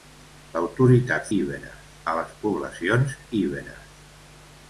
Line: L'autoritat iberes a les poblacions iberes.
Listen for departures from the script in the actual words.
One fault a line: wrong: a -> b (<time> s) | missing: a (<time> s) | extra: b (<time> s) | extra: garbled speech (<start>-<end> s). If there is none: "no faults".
no faults